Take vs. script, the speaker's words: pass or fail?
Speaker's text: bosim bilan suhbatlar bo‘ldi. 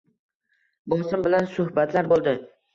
pass